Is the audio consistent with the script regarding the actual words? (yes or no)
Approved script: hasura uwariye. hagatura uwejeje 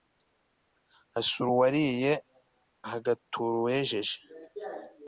yes